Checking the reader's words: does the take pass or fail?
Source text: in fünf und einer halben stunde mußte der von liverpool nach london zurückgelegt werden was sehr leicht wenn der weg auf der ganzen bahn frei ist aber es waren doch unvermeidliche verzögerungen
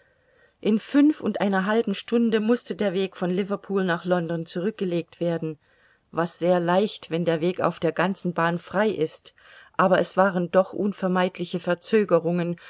fail